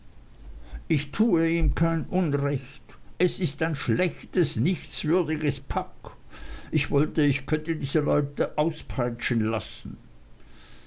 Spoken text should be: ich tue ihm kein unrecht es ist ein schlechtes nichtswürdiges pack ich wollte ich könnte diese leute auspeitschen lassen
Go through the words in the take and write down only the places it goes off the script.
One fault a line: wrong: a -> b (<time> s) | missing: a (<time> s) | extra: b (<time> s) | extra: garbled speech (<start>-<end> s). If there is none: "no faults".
no faults